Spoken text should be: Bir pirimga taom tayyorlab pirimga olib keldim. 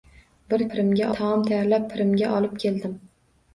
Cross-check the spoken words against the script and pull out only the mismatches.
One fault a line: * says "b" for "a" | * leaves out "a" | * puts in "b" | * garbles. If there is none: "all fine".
all fine